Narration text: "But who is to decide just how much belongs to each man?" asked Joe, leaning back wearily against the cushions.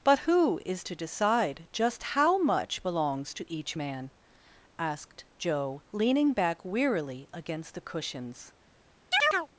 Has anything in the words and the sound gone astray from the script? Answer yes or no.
yes